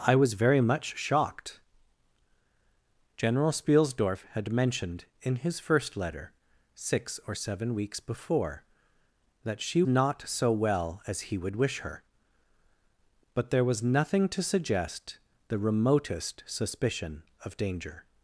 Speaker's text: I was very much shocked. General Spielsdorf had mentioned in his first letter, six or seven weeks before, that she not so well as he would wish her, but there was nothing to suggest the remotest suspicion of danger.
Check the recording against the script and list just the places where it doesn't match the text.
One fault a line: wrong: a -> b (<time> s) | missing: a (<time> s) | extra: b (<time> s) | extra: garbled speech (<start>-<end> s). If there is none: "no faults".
no faults